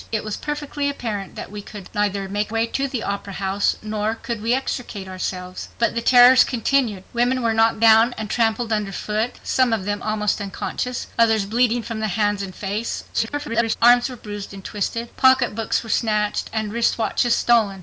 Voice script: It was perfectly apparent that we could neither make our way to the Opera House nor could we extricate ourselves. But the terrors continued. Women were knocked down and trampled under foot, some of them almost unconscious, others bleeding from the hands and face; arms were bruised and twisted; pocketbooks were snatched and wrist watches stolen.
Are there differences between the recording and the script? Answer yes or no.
yes